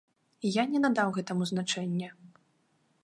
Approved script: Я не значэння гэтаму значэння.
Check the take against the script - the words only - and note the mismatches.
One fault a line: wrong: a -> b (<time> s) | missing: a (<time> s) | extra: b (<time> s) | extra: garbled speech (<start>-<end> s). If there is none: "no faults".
wrong: значэння -> надаў (0.8 s)